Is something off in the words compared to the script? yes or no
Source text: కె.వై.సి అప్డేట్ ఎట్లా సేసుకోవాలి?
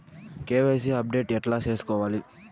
no